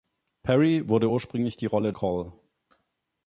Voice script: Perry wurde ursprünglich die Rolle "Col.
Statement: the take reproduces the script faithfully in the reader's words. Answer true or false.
true